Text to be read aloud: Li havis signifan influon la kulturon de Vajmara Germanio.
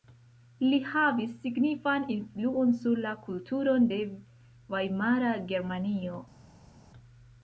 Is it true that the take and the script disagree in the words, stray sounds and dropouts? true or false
true